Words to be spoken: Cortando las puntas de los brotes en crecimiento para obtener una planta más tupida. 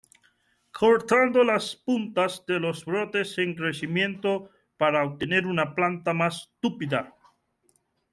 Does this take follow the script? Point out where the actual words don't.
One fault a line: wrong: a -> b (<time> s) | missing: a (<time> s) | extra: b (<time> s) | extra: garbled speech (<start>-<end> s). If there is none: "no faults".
no faults